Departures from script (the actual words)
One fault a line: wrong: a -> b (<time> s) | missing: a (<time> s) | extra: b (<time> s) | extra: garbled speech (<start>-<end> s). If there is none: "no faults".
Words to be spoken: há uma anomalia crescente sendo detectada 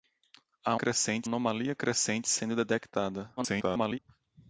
wrong: uma -> crescente (0.8 s)
extra: garbled speech (3.4-4.0 s)